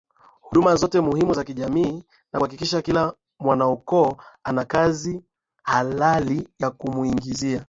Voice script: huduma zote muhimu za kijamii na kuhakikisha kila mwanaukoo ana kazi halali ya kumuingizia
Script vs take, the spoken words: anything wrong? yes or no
no